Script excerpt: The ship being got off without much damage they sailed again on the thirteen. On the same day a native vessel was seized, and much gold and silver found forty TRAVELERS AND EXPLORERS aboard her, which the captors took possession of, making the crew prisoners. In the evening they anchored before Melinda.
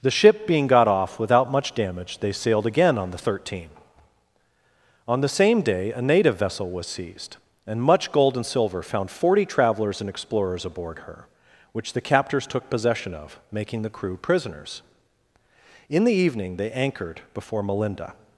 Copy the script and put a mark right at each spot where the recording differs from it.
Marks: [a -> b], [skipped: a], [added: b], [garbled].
The ship being got off without much damage they sailed again on the thirteen. On the same day a native vessel was seized, and much gold and silver found forty TRAVELERS AND EXPLORERS aboard her, which the captors took possession of, making the crew prisoners. In the evening they anchored before Melinda.